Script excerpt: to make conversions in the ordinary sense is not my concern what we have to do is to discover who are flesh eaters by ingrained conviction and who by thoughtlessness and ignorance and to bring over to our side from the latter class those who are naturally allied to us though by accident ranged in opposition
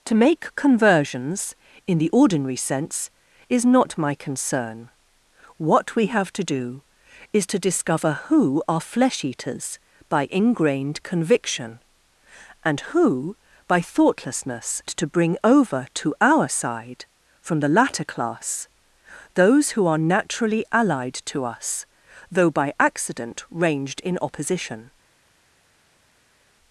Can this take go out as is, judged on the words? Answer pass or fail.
fail